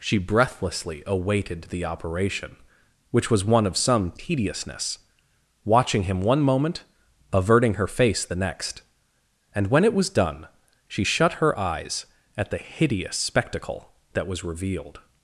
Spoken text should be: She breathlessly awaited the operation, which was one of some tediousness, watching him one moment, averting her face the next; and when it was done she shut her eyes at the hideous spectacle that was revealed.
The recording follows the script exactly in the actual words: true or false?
true